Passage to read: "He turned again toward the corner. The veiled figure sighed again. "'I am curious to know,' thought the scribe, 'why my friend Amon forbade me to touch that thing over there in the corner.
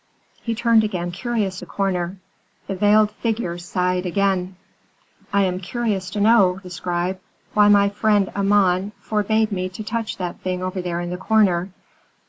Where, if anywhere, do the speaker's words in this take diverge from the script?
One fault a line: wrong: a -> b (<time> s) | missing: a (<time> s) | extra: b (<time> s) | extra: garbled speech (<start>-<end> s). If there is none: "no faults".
wrong: toward -> curious (1.1 s)
missing: thought (6.6 s)